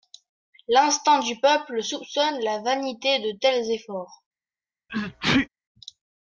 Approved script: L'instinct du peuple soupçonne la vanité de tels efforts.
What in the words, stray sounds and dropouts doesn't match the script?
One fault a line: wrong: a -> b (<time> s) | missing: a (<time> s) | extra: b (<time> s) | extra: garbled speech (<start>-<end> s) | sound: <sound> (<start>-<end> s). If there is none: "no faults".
sound: sneeze (4.9-5.5 s)